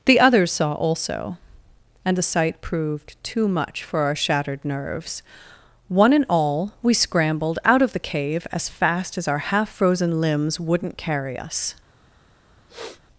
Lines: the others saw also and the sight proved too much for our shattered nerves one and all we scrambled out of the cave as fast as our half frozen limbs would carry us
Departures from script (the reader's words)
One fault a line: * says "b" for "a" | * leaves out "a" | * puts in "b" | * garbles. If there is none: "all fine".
* says "wouldn't" for "would"